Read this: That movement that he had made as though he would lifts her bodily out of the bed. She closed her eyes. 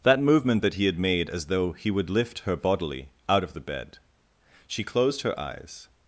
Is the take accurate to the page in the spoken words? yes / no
no